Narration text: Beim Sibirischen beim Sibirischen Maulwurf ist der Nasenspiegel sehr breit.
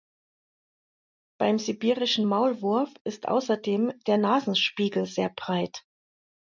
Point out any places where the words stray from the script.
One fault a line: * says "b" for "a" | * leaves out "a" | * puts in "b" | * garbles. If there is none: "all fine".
* leaves out "beim Sibirischen"
* puts in "außerdem"